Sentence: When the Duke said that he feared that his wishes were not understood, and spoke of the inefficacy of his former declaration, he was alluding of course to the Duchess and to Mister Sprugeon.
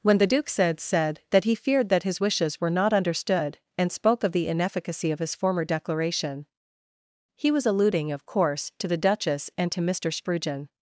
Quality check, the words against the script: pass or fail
fail